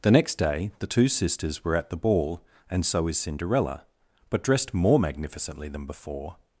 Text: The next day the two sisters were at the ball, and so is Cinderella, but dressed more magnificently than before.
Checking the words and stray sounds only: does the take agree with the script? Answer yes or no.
yes